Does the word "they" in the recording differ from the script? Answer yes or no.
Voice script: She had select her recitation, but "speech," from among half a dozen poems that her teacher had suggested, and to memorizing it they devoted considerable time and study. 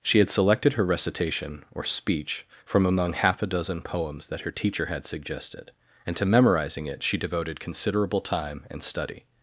yes